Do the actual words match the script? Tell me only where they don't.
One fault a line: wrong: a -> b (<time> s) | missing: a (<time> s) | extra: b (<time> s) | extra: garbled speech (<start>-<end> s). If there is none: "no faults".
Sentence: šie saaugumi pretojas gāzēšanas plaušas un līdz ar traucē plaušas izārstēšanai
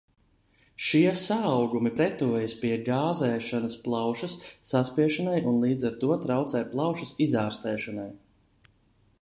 extra: pie (2.6 s)
extra: saspiešanai (4.7 s)
extra: to (6.0 s)